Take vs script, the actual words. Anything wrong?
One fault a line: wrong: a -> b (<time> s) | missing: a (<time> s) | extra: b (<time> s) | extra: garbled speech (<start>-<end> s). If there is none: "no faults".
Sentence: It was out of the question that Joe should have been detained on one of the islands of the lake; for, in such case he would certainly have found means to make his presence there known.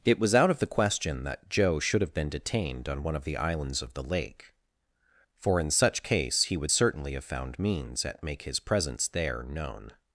wrong: to -> at (8.0 s)